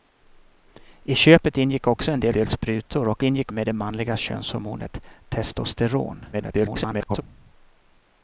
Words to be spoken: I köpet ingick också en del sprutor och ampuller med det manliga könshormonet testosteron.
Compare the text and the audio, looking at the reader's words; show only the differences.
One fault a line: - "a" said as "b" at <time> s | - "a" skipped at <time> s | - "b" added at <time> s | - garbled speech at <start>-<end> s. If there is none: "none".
- "del" added at 2.3 s
- "ampuller" said as "ingick" at 3.2 s
- garbled speech at 6.3-7.2 s